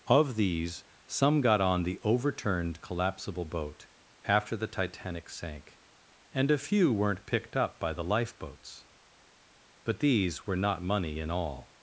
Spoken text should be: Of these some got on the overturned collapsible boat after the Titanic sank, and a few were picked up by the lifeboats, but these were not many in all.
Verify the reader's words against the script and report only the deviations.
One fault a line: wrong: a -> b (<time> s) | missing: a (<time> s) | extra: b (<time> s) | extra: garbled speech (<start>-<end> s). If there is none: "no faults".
wrong: were -> weren't (6.9 s)
wrong: many -> money (10.8 s)